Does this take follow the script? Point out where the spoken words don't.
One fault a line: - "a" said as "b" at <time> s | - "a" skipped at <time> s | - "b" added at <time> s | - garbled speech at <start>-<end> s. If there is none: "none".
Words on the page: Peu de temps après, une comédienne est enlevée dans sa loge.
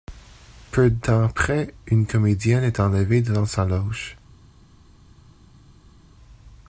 none